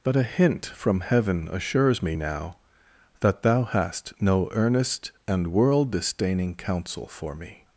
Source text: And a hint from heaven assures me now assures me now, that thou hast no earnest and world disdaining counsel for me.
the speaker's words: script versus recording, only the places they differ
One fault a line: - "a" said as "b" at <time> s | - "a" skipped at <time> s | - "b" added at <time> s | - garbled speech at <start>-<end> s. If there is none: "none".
- "And" said as "But" at 0.0 s
- "assures me now" skipped at 2.6 s